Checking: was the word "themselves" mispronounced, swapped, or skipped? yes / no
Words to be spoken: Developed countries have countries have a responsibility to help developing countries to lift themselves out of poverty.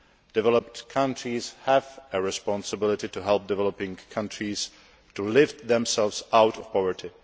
no